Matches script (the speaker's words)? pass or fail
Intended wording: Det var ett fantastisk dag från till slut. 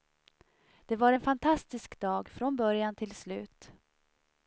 fail